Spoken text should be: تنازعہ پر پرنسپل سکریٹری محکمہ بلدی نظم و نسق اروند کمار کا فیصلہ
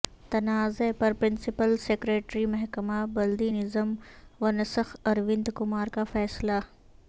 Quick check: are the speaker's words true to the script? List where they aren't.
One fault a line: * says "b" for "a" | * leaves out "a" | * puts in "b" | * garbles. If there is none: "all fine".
all fine